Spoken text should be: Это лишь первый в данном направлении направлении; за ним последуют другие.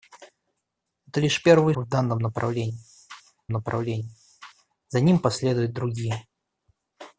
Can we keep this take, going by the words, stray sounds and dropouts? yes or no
yes